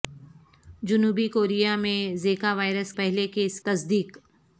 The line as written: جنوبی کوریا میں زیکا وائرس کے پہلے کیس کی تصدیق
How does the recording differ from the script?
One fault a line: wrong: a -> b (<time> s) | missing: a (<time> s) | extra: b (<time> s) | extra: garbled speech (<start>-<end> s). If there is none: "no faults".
missing: کے (2.9 s)
missing: کی (3.6 s)